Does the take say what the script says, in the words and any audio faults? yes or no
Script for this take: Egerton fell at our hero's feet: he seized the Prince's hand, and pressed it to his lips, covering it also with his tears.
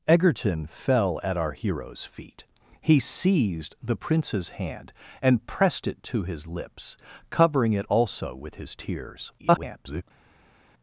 no